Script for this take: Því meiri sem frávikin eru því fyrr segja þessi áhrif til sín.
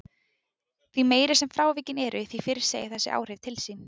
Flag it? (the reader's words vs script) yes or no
no